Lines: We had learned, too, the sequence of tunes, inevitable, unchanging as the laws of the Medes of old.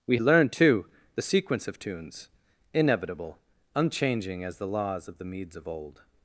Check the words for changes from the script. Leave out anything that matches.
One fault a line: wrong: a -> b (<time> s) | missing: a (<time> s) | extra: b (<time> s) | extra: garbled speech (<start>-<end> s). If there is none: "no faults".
missing: had (0.2 s)